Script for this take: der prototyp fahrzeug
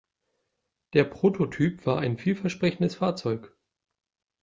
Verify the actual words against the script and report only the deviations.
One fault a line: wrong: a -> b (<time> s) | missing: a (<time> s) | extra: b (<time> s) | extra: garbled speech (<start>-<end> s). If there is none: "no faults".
extra: war ein vielversprechendes (1.9 s)